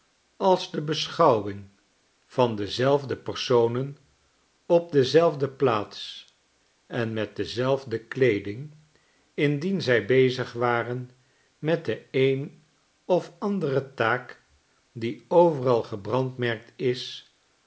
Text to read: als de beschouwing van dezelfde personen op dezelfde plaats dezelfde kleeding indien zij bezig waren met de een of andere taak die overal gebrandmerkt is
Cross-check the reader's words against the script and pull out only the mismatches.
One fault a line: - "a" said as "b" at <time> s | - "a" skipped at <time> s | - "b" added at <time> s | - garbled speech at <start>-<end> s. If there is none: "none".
- "en met" added at 6.9 s